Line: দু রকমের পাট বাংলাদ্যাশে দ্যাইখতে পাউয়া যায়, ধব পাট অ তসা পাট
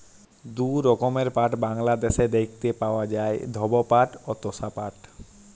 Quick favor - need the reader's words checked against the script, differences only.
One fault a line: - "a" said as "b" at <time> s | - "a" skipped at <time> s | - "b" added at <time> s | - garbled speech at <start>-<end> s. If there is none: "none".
none